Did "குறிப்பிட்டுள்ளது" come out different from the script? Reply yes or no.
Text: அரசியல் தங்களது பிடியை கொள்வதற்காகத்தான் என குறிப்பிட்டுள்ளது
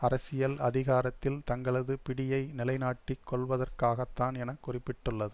no